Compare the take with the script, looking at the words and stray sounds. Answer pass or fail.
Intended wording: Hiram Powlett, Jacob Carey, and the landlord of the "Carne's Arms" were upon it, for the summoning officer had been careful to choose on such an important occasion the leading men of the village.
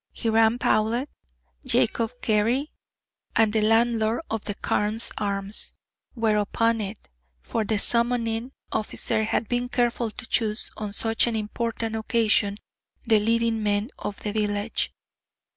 pass